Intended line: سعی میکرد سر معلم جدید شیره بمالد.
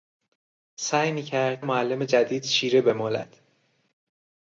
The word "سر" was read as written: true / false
false